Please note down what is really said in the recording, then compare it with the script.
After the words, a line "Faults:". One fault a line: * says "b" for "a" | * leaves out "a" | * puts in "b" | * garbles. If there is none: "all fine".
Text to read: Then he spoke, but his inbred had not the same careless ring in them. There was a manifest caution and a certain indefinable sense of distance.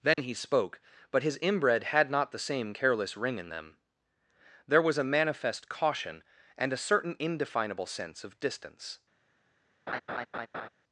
Then he spoke, but his inbred had not the same careless ring in them. There was a manifest caution and a certain indefinable sense of distance.
Faults:
all fine